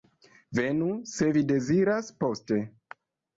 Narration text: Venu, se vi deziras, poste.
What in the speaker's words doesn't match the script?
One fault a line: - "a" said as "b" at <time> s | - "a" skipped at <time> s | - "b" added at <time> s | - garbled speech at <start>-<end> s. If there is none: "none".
none